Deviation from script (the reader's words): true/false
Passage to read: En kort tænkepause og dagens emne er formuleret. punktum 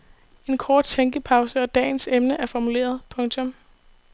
false